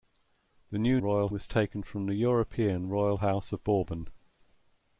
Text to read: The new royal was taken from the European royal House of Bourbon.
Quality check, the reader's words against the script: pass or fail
pass